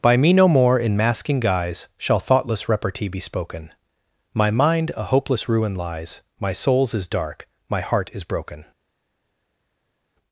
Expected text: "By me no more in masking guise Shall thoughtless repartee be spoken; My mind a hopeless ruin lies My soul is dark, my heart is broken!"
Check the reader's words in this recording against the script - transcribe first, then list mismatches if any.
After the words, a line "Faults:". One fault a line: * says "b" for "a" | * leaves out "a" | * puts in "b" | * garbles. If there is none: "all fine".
"By me no more in masking guise Shall thoughtless repartee be spoken; My mind a hopeless ruin lies My souls is dark, my heart is broken!"
Faults:
* says "souls" for "soul"